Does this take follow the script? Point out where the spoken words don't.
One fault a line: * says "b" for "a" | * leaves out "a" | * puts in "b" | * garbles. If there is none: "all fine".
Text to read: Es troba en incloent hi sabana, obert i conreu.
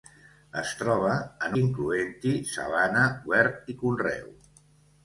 all fine